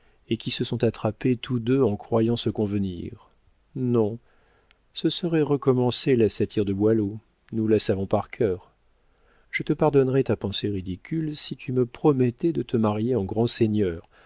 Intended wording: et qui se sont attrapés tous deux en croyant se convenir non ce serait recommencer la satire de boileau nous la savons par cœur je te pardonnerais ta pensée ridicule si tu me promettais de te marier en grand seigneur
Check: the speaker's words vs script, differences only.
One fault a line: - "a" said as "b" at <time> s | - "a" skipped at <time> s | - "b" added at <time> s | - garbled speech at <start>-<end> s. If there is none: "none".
none